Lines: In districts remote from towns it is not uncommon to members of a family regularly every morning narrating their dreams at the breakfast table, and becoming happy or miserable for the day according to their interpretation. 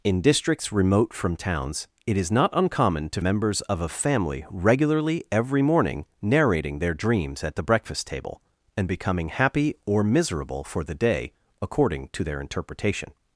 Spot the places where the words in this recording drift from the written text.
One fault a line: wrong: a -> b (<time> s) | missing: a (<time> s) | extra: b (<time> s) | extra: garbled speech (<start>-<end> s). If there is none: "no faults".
no faults